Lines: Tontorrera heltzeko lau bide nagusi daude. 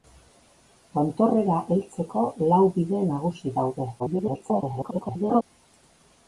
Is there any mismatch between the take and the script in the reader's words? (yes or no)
yes